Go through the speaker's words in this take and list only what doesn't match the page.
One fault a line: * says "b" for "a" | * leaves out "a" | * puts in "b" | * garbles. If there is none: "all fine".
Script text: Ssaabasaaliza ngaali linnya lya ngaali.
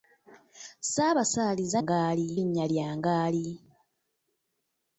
all fine